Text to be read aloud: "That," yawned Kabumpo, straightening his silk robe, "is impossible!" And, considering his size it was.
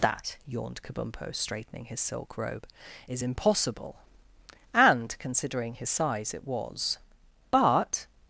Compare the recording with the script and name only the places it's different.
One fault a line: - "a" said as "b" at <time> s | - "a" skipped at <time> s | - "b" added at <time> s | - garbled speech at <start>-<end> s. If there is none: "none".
- "But" added at 7.5 s